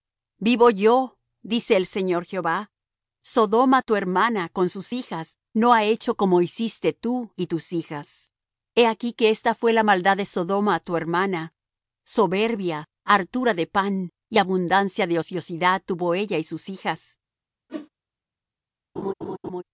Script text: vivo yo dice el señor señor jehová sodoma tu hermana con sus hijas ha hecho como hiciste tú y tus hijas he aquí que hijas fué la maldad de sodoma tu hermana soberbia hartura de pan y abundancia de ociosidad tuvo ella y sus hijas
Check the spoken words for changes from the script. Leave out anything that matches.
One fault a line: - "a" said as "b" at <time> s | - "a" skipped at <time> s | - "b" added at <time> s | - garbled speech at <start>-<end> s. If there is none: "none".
- "señor" skipped at 2.2 s
- "no" added at 5.5 s
- "hijas" said as "esta" at 9.3 s